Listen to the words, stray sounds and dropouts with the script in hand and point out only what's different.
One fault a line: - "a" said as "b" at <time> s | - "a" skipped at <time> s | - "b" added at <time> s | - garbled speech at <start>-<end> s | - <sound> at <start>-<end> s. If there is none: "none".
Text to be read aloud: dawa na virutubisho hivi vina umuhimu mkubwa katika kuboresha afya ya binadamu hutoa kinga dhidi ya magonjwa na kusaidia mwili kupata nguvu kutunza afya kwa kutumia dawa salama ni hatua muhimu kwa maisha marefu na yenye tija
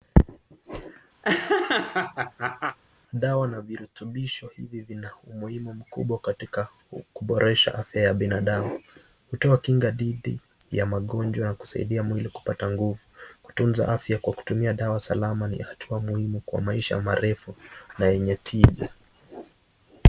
- laugh at 1.2-2.8 s